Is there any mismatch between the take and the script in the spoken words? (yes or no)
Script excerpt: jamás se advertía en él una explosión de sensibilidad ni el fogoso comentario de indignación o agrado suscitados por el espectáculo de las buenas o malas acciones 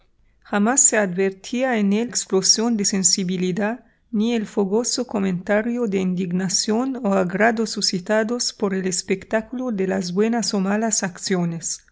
yes